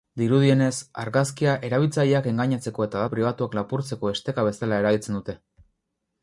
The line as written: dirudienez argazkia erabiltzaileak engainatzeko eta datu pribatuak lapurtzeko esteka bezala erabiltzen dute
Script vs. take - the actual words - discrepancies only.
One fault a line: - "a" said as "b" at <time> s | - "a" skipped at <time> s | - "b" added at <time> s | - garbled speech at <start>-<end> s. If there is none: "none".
- "datu" skipped at 3.0 s